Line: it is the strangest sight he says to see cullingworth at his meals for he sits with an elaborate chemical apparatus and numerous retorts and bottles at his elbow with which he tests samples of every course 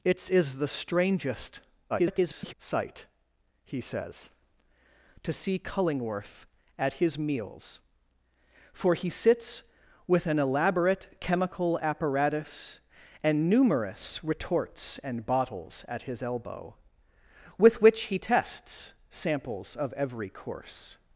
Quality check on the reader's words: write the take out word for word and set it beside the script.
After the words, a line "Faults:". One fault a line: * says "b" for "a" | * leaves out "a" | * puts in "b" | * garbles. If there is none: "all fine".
it is the strangest [garbled] sight he says to see cullingworth at his meals for he sits with an elaborate chemical apparatus and numerous retorts and bottles at his elbow with which he tests samples of every course
Faults:
* garbles